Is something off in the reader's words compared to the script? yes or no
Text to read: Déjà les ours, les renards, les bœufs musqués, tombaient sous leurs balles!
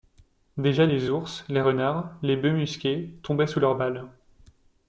no